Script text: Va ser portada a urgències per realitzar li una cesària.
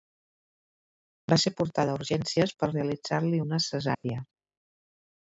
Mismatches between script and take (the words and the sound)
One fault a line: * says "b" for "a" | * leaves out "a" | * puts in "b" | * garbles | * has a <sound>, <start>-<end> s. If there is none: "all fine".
* has a dropout, 3.9-4.0 s